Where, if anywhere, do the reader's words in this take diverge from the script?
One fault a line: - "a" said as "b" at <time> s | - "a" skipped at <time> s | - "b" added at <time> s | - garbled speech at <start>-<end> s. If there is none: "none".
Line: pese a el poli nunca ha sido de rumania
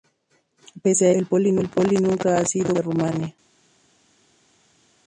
none